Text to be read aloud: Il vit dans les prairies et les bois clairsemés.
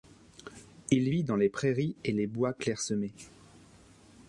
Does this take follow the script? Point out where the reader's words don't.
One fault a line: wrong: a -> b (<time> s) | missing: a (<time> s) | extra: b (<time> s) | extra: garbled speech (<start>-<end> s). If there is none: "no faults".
no faults